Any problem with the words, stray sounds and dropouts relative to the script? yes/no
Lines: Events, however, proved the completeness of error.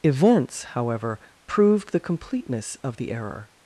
yes